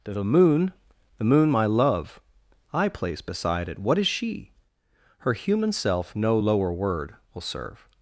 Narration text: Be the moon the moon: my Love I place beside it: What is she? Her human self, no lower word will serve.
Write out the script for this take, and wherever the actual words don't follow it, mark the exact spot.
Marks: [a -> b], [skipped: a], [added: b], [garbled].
[skipped: Be] the moon the moon: my Love I place beside it: What is she? Her human self, no lower word will serve.